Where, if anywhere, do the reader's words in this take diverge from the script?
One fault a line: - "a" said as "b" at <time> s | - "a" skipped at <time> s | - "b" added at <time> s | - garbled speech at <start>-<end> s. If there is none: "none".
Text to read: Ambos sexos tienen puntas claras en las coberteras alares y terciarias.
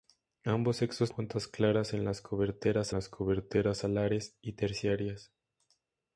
- "tienen" skipped at 1.1 s
- "las coberteras" added at 2.9 s